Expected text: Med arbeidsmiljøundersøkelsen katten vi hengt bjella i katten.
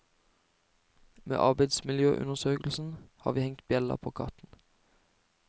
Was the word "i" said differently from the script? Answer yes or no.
yes